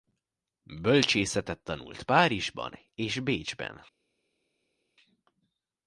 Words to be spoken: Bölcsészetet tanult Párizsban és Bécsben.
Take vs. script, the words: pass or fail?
pass